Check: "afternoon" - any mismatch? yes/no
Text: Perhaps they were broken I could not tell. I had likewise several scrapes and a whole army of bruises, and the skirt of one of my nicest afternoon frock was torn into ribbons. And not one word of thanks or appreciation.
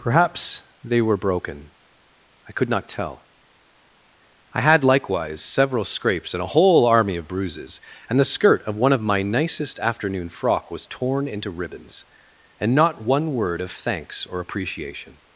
no